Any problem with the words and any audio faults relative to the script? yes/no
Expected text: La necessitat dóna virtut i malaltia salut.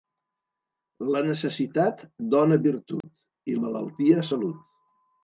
yes